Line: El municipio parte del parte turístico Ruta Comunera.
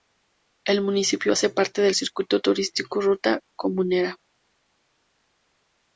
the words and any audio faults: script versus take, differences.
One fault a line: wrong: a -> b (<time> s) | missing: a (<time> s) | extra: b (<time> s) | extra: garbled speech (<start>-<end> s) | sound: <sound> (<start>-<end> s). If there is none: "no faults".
extra: hace (1.3 s)
wrong: parte -> circuito (1.9 s)